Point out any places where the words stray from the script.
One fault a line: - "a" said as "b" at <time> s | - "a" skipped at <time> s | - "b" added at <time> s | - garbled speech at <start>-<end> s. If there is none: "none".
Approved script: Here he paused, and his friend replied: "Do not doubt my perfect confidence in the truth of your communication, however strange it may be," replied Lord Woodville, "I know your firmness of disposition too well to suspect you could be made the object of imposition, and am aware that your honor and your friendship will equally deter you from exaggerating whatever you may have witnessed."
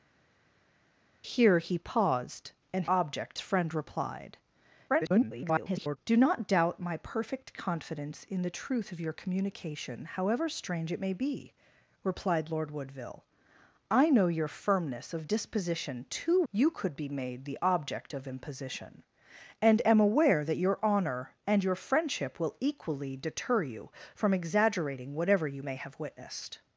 - "his" said as "object" at 2.9 s
- garbled speech at 4.9-6.0 s
- "well to suspect" skipped at 16.4 s